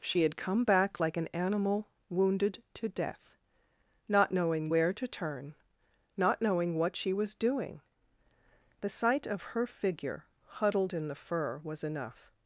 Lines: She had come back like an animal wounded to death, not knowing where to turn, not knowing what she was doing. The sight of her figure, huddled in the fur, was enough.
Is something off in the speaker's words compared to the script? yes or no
no